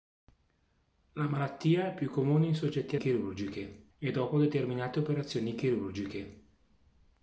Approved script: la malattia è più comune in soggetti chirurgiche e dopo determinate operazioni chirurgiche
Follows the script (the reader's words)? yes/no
yes